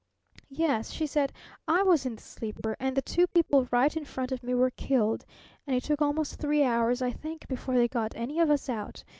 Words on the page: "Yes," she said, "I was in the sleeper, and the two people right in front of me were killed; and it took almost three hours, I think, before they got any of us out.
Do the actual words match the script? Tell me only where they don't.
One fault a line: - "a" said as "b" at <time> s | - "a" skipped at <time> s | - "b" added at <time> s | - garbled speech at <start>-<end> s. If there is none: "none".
none